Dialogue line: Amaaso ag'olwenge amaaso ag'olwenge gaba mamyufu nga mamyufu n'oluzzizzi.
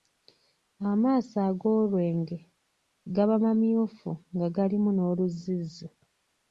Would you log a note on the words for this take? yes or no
yes